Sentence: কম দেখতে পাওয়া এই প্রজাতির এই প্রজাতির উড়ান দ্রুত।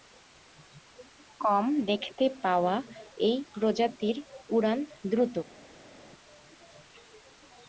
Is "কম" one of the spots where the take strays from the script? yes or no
no